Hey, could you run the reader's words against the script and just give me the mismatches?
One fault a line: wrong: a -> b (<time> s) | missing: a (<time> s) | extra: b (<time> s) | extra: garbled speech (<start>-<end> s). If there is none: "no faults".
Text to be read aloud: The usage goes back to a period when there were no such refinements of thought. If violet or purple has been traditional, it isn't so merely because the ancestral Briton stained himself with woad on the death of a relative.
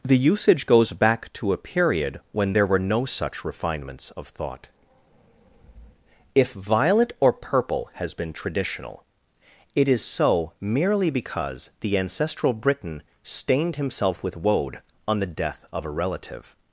wrong: isn't -> is (9.9 s)